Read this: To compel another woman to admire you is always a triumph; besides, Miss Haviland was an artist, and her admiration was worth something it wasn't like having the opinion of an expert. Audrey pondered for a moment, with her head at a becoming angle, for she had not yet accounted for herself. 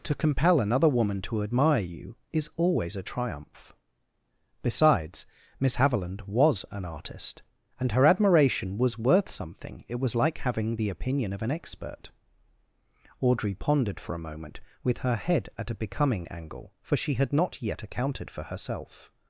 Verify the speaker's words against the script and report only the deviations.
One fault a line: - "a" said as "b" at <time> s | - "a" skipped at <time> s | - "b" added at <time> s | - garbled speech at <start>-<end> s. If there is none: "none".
- "wasn't" said as "was" at 9.9 s